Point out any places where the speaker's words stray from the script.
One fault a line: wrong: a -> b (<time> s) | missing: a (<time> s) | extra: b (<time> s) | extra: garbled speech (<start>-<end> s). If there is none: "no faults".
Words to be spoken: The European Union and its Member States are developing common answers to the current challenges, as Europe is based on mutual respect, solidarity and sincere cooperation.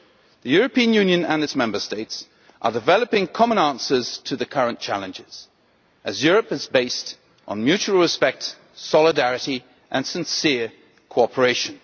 no faults